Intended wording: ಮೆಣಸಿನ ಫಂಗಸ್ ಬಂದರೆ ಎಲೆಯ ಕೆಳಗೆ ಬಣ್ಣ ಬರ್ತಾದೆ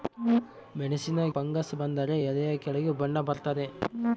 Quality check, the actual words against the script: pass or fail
pass